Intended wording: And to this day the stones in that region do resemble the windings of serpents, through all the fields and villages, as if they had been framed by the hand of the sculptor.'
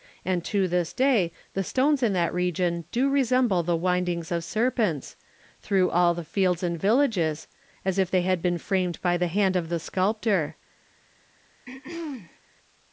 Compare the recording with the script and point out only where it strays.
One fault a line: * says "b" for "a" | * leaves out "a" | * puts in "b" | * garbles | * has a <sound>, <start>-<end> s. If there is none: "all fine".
* has a throat clearing, 11.7-12.4 s